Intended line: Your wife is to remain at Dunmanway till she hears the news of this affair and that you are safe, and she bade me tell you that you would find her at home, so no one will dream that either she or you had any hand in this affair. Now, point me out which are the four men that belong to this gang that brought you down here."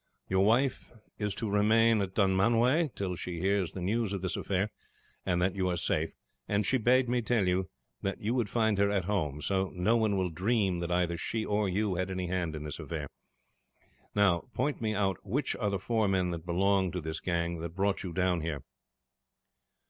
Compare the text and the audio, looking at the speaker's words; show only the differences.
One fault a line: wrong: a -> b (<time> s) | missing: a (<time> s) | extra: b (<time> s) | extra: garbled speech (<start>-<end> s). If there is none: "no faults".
no faults